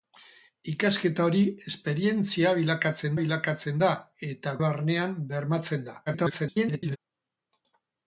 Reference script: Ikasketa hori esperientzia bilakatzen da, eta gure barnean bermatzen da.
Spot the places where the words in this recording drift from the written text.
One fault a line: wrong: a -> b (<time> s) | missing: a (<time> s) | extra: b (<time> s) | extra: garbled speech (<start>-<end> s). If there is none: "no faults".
extra: bilakatzen (3.2 s)
missing: gure (4.6 s)
extra: garbled speech (6.1-7.0 s)